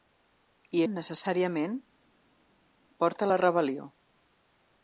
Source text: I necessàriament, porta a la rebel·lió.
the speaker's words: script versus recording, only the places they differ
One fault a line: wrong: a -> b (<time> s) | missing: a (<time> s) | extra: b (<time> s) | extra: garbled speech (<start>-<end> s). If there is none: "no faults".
no faults